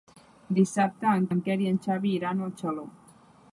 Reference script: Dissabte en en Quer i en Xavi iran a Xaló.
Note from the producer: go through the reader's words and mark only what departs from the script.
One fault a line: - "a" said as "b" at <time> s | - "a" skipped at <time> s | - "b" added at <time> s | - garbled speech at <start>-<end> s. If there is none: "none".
none